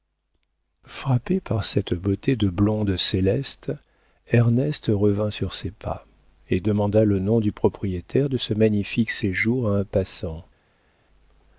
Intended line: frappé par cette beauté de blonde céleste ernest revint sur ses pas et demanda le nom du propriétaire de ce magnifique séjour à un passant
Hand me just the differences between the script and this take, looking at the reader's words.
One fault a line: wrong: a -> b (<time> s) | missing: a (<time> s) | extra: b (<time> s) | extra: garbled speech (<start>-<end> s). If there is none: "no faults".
no faults